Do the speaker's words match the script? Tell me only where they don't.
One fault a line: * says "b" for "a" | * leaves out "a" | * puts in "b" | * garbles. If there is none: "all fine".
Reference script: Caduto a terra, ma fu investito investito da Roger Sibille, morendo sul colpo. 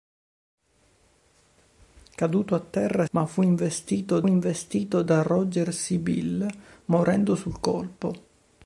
all fine